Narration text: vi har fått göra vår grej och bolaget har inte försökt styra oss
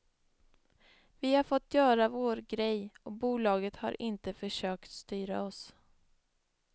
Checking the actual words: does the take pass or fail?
pass